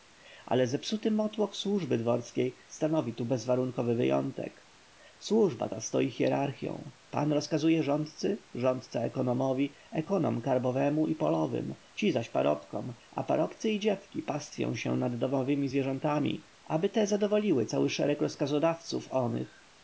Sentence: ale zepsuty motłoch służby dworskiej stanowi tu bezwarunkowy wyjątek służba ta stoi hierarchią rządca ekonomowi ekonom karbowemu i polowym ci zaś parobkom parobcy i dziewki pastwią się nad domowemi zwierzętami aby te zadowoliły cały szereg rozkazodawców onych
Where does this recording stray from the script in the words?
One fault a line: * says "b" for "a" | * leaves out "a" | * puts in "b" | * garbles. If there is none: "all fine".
* puts in "pan rozkazuje rządcy"
* puts in "a"